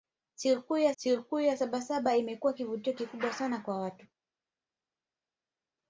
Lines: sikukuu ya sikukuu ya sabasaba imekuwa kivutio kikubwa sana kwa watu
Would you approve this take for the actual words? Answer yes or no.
yes